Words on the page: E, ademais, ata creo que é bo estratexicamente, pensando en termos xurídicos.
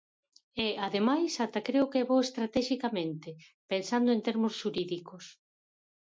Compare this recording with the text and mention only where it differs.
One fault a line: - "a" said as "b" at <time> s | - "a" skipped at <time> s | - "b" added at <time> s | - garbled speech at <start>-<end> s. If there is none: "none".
none